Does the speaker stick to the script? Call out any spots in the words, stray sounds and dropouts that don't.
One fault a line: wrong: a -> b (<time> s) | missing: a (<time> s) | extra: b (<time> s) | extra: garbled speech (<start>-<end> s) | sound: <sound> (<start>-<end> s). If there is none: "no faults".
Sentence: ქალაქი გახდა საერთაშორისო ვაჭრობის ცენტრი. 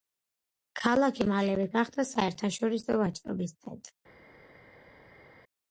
extra: მალევე (1.3 s)